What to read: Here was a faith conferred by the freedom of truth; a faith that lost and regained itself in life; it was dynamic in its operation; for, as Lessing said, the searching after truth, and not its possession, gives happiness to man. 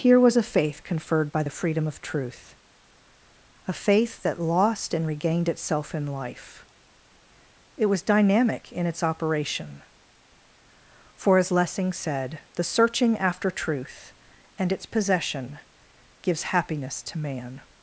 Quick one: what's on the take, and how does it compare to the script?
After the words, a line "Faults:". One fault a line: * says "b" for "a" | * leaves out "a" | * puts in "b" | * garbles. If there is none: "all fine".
Here was a faith conferred by the freedom of truth; a faith that lost and regained itself in life; it was dynamic in its operation; for, as Lessing said, the searching after truth, and its possession, gives happiness to man.
Faults:
* leaves out "not"